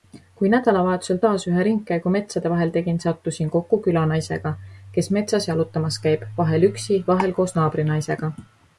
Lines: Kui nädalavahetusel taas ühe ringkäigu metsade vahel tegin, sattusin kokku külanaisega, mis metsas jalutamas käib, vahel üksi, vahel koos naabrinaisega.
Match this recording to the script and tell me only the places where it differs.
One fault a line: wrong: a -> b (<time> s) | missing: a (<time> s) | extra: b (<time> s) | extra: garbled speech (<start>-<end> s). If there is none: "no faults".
wrong: mis -> kes (5.0 s)